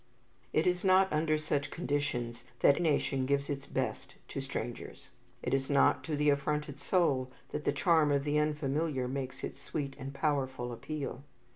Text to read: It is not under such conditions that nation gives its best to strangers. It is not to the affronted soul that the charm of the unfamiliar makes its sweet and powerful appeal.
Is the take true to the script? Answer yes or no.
yes